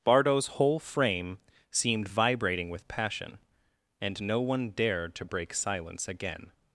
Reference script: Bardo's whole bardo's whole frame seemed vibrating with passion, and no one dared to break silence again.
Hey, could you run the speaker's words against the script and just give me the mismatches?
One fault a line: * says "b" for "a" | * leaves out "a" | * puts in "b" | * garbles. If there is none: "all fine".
* leaves out "bardo's whole"